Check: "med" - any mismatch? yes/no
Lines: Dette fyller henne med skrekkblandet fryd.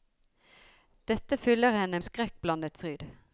yes